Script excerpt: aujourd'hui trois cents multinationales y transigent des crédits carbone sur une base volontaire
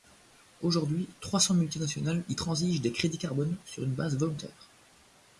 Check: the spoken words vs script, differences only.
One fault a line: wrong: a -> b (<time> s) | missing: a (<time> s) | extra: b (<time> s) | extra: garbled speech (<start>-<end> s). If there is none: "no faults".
no faults